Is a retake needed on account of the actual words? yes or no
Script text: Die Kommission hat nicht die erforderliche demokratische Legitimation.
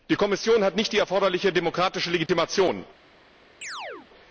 no